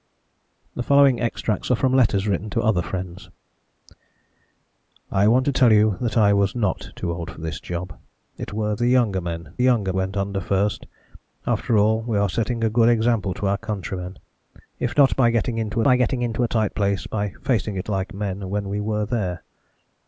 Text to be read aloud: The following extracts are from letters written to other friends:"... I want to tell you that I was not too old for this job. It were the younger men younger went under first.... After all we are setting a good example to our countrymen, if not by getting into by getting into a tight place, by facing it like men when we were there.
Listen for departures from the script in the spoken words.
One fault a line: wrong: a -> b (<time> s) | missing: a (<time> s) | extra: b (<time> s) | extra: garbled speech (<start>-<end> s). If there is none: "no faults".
no faults